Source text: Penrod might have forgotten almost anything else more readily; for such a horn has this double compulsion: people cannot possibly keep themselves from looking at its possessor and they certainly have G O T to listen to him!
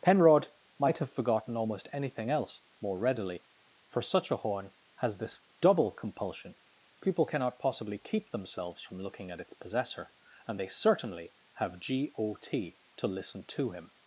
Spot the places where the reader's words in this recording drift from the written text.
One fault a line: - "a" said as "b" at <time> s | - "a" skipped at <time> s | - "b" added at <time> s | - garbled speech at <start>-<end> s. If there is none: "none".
none